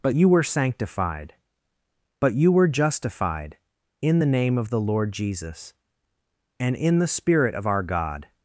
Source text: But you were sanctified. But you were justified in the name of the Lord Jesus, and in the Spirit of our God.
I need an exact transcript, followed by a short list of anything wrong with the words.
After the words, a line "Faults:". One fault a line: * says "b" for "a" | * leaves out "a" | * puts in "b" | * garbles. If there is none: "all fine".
But you were sanctified. But you were justified in the name of the Lord Jesus, and in the Spirit of our God.
Faults:
all fine